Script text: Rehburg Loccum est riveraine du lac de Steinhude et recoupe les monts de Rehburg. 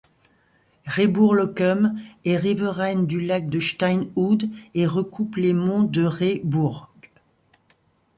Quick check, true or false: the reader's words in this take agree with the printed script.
true